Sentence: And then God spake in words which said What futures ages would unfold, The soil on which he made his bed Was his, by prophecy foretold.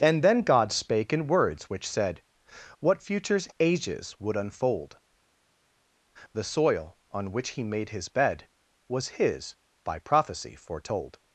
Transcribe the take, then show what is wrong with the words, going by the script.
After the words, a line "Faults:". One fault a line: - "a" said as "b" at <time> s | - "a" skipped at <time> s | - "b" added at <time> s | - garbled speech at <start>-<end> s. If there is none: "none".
And then God spake in words which said What futures ages would unfold, The soil on which he made his bed Was his, by prophecy foretold.
Faults:
none